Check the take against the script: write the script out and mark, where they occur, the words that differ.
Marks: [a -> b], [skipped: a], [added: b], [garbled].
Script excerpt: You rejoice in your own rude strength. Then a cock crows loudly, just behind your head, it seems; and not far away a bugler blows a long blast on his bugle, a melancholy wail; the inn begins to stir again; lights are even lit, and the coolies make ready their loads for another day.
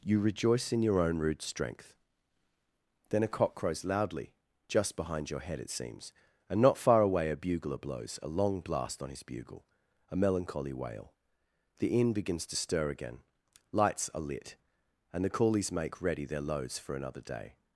You rejoice in your own rude strength. Then a cock crows loudly, just behind your head, it seems; and not far away a bugler blows a long blast on his bugle, a melancholy wail; the inn begins to stir again; lights are [skipped: even] lit, and the coolies make ready their loads for another day.